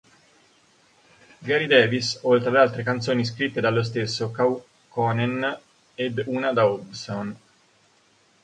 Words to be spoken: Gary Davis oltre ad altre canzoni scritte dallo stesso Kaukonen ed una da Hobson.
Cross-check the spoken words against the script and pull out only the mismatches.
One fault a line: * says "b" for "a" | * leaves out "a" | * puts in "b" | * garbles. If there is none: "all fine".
all fine